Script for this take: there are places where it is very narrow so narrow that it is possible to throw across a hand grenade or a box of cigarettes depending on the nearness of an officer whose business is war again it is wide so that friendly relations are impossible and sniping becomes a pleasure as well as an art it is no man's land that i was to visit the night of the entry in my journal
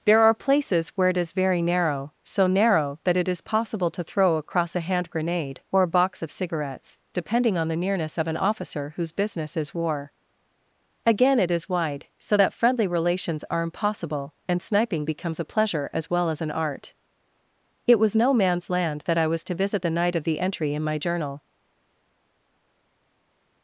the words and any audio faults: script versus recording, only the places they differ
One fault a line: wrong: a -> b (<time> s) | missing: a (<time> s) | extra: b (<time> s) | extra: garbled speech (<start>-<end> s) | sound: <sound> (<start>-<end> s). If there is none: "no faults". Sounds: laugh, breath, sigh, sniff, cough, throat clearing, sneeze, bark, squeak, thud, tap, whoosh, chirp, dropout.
wrong: is -> was (18.0 s)